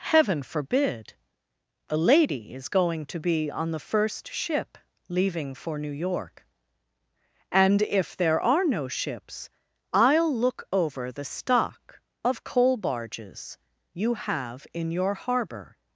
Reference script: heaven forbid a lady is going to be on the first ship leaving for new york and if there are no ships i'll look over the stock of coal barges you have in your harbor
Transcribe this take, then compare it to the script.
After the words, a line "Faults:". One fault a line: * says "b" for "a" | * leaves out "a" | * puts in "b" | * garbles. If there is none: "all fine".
heaven forbid a lady is going to be on the first ship leaving for new york and if there are no ships i'll look over the stock of coal barges you have in your harbor
Faults:
all fine